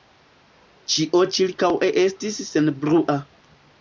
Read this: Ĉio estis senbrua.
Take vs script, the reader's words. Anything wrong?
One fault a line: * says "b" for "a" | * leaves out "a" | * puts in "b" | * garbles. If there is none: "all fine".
* puts in "ĉirkaŭe"